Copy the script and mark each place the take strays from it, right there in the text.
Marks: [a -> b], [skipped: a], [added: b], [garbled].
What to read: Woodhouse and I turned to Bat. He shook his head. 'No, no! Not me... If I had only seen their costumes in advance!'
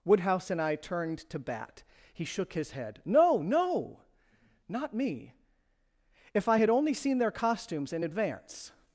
Woodhouse and I turned to Bat. He shook his head. 'No, no! Not me... If I had only seen their costumes in advance!'